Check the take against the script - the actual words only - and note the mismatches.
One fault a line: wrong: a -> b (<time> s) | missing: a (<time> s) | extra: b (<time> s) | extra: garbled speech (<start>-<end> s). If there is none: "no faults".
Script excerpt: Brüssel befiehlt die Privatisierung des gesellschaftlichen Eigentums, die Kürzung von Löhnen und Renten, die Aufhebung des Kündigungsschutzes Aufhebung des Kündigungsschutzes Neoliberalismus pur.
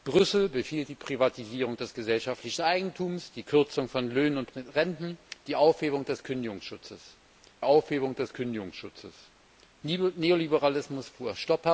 no faults